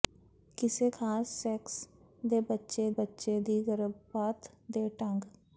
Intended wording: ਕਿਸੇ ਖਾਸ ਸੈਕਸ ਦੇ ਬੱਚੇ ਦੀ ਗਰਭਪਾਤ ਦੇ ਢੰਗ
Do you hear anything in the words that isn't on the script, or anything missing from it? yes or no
yes